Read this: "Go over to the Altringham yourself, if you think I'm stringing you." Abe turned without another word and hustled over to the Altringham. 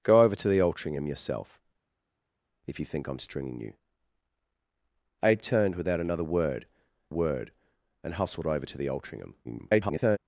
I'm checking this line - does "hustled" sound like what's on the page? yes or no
yes